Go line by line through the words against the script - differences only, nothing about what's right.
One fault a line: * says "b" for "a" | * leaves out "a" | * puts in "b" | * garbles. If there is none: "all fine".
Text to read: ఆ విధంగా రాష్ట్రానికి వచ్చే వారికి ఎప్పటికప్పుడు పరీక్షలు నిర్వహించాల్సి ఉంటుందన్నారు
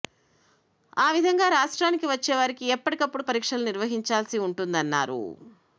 all fine